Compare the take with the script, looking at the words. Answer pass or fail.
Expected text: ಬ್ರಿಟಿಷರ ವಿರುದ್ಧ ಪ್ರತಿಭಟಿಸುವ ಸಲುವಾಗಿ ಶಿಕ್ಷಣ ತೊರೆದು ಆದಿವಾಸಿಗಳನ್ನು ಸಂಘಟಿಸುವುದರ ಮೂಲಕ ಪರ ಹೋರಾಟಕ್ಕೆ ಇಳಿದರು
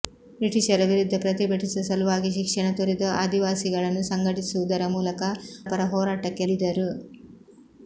pass